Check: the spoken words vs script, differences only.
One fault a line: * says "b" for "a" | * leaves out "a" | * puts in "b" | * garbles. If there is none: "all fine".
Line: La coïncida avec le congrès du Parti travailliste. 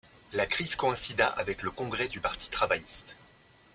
* puts in "crise"